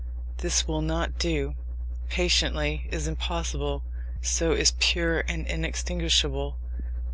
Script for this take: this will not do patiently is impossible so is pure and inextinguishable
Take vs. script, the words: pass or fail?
pass